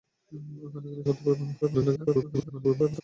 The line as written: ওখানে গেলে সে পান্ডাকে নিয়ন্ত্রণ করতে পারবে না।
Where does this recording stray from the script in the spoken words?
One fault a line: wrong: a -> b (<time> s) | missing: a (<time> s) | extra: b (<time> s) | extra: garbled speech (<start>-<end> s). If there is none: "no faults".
missing: সে পান্ডাকে নিয়ন্ত্রণ (1.0 s)
extra: garbled speech (1.6-3.0 s)